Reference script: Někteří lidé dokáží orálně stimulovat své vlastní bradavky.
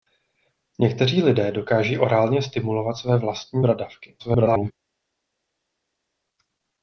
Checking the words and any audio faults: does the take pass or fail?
fail